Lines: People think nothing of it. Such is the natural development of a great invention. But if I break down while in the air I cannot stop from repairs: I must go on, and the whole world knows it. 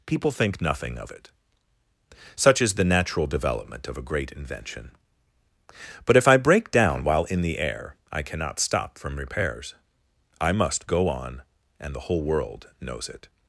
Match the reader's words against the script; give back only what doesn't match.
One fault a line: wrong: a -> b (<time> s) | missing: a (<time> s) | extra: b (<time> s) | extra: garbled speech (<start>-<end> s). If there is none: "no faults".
no faults